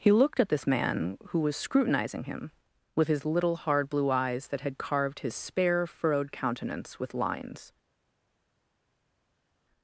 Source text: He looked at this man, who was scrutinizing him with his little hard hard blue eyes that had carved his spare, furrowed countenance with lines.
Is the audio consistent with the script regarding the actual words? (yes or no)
no